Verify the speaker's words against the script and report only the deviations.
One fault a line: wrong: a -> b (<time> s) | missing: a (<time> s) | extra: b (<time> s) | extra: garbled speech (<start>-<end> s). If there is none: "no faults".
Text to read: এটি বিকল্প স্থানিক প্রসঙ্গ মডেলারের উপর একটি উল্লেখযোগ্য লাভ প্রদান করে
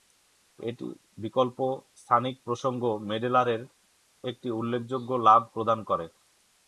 missing: উপর (3.6 s)